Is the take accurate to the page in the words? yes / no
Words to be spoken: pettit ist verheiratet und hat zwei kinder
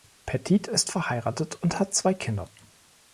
yes